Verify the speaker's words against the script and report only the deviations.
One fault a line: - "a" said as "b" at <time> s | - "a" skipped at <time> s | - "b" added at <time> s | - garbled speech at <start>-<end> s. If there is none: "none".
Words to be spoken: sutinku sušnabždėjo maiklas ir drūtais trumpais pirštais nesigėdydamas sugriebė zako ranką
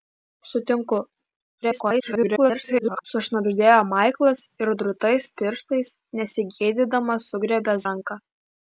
- garbled speech at 1.6-3.1 s
- "trumpais" skipped at 5.3 s
- "zako" skipped at 7.8 s